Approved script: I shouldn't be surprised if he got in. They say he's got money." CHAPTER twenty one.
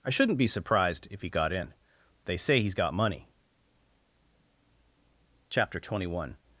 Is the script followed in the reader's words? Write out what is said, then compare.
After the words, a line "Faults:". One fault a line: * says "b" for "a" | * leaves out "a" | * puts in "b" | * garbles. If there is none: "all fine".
I shouldn't be surprised if he got in. They say he's got money." CHAPTER twenty one.
Faults:
all fine